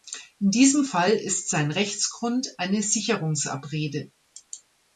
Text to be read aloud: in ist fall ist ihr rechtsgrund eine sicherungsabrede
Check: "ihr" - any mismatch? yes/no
yes